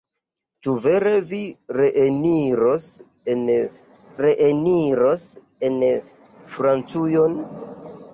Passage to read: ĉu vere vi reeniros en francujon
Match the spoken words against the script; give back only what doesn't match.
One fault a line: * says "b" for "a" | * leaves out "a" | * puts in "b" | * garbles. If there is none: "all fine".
* puts in "reeniros en"